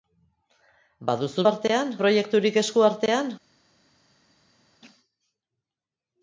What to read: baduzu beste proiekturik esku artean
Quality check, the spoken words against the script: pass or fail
fail